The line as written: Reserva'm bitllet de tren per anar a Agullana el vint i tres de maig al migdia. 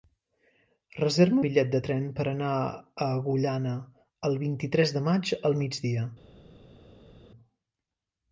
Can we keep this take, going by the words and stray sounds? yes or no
yes